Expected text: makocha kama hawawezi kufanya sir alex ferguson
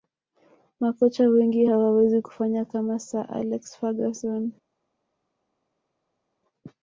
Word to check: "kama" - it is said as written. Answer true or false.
false